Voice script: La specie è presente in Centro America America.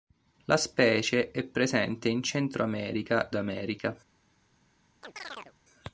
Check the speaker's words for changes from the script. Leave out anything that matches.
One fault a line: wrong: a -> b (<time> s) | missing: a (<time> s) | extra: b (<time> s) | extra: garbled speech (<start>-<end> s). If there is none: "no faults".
no faults